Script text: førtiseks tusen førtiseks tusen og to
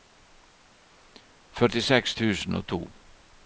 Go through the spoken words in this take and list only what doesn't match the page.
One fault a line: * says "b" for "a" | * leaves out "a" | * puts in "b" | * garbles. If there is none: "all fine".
* leaves out "førtiseks tusen"